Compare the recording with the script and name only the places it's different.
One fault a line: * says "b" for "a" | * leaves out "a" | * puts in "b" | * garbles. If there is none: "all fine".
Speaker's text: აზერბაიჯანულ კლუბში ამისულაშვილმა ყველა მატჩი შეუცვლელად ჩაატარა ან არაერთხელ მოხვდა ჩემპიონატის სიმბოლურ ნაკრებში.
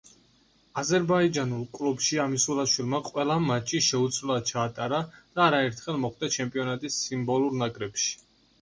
* says "და" for "ან"